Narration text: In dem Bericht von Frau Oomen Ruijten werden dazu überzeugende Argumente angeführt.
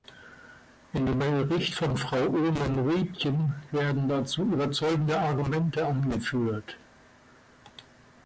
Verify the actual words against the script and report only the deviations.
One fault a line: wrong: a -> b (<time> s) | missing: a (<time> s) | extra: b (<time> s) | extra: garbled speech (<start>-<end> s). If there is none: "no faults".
no faults